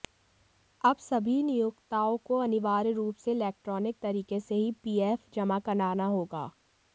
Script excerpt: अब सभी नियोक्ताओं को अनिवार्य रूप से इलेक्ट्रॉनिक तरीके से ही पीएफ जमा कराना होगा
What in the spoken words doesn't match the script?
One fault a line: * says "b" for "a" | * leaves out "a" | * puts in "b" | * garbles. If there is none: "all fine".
all fine